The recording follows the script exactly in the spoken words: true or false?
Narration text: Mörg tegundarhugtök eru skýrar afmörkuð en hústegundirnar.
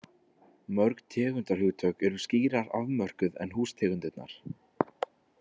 true